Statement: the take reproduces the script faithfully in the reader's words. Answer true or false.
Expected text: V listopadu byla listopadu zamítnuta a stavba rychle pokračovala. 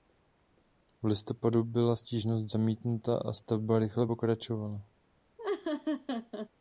false